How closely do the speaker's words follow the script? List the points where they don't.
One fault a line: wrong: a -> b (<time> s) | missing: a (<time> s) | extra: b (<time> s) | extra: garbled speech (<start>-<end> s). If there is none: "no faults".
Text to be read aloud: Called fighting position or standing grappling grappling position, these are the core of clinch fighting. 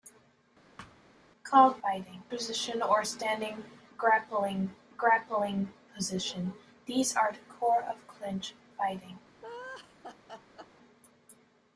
no faults